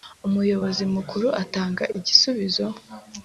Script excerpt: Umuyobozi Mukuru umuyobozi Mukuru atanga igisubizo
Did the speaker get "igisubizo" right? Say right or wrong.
right